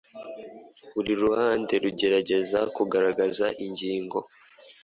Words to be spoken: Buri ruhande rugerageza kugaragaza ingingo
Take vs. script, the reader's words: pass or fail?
pass